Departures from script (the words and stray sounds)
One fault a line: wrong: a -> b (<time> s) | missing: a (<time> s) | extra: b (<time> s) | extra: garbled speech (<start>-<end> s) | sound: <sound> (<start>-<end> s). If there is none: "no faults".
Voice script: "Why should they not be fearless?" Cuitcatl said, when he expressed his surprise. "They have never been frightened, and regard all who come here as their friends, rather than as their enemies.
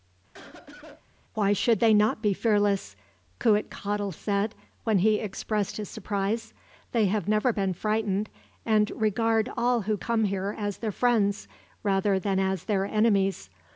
sound: cough (0.3-1.0 s)